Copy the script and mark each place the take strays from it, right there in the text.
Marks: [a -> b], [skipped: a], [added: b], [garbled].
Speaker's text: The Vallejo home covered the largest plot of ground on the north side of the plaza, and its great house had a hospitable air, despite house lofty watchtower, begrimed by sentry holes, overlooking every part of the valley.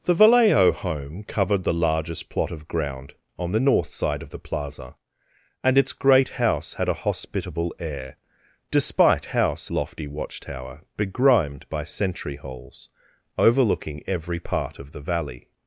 The Vallejo home covered the largest plot of ground on the north side of the plaza, and its great house had a hospitable air, despite house lofty watchtower, begrimed by sentry holes, overlooking every part of the valley.